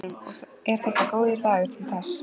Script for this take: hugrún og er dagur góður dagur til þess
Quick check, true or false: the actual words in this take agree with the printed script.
false